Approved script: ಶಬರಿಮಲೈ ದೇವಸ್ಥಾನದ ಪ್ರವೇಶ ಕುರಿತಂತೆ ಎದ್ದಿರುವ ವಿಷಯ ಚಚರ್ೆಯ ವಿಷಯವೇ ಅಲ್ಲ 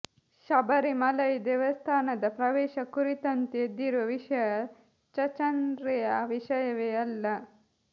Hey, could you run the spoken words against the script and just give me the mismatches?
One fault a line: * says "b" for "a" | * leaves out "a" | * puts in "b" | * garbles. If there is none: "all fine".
all fine